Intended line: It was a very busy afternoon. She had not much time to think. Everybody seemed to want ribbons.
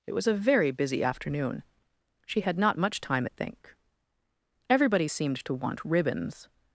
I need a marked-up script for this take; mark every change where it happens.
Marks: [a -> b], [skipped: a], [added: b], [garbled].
It was a very busy afternoon. She had not much time [to -> at] think. Everybody seemed to want ribbons.